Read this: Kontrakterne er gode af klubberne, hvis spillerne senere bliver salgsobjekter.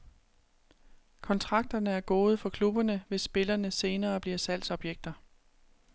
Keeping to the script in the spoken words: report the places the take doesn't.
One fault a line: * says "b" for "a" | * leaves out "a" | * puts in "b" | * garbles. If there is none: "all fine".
* says "for" for "af"